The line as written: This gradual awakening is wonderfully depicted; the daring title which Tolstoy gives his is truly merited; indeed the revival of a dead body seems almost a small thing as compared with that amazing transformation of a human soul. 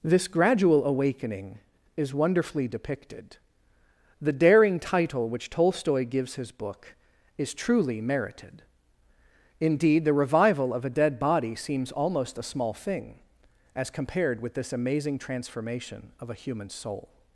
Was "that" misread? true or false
true